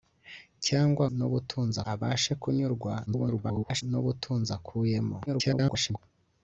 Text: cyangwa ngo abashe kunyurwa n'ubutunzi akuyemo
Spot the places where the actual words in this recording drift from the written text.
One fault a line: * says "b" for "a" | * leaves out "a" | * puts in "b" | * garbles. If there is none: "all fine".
* says "n'ubutunzi" for "ngo"
* garbles
* garbles